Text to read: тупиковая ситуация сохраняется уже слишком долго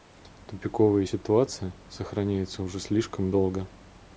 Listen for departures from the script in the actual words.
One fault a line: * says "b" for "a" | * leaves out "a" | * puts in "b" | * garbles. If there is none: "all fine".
all fine